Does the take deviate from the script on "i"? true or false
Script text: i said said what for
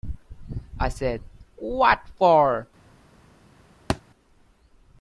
false